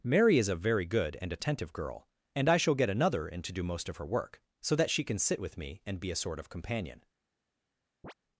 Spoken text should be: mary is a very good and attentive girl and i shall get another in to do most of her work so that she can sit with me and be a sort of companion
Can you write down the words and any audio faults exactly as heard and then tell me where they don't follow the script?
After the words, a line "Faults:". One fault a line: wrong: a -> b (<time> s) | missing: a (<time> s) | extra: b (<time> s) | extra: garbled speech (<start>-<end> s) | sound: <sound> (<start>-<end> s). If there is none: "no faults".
mary is a very good and attentive girl and i shall get another in to do most of her work so that she can sit with me and be a sort of companion
Faults:
sound: chirp (8.0-8.1 s)